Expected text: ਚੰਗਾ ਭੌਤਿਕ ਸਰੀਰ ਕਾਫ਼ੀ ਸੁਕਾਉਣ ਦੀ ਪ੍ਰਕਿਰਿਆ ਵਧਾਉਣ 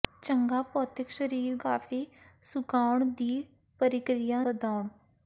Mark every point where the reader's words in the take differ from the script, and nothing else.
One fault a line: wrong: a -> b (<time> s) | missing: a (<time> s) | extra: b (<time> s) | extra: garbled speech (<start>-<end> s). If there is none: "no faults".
no faults